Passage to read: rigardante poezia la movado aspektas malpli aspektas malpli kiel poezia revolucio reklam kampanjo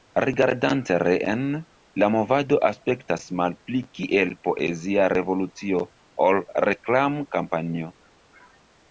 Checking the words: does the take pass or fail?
fail